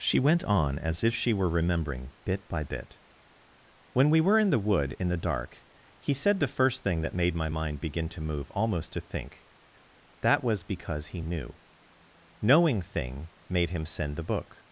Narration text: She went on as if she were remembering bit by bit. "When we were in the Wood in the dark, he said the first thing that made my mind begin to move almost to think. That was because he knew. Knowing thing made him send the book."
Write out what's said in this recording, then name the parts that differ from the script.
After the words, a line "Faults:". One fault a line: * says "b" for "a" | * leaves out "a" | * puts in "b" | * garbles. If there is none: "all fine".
She went on as if she were remembering bit by bit. "When we were in the Wood in the dark, he said the first thing that made my mind begin to move almost to think. That was because he knew. Knowing thing made him send the book."
Faults:
all fine